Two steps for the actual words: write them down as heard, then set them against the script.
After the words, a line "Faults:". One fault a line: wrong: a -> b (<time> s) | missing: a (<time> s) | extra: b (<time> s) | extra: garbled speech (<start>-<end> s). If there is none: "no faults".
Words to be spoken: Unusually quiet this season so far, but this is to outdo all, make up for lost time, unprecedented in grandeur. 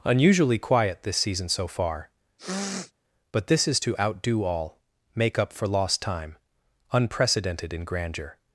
Unusually quiet this season so far, but this is to outdo all, make up for lost time, unprecedented in grandeur.
Faults:
no faults